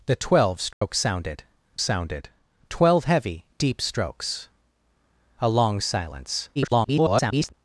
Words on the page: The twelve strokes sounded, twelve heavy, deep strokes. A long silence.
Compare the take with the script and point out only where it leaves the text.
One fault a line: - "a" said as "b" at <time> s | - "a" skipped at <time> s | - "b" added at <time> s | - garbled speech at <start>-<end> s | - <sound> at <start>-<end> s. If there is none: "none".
- dropout at 0.7-0.8 s
- "sounded" added at 1.8 s
- garbled speech at 6.6-7.5 s